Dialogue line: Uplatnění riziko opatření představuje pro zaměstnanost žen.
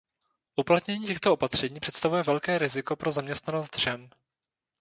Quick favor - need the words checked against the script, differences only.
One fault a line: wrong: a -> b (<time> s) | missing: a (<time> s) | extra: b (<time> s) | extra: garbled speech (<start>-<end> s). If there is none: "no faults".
wrong: riziko -> těchto (1.1 s)
extra: velké riziko (2.2 s)